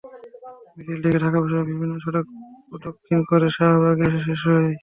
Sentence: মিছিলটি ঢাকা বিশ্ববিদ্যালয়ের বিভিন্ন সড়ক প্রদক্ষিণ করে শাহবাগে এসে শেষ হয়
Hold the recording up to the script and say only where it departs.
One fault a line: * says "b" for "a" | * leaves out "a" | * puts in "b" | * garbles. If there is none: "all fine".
all fine